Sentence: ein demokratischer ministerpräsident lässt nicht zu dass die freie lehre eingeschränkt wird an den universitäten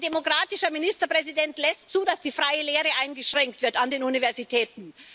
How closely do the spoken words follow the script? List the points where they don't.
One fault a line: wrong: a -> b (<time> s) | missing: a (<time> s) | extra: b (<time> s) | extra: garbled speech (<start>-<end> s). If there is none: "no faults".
missing: nicht (1.9 s)